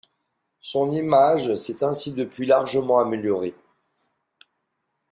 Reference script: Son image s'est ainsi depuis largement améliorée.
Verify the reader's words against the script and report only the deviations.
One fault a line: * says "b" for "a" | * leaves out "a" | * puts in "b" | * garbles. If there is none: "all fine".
all fine